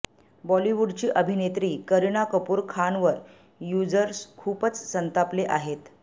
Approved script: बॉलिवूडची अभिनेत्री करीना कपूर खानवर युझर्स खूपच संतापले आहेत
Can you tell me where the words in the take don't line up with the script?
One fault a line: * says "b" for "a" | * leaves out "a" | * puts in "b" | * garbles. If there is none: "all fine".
all fine